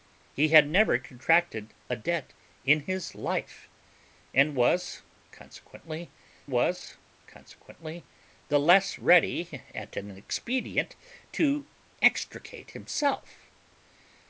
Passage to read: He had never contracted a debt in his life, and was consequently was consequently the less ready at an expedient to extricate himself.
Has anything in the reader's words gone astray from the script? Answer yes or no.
no